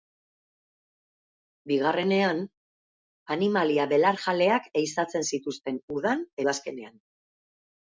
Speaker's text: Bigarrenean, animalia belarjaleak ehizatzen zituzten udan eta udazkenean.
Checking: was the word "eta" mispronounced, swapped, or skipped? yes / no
yes